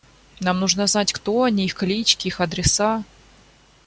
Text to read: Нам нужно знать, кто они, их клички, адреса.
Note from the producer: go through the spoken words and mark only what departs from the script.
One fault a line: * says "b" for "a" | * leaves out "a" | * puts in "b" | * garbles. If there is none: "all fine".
* puts in "их"